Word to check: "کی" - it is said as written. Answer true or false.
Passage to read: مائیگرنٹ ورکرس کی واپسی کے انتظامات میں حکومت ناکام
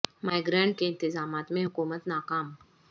false